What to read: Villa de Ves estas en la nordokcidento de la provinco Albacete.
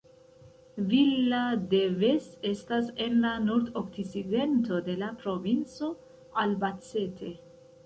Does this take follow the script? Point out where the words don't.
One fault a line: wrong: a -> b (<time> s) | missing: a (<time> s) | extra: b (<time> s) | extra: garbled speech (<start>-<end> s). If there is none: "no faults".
no faults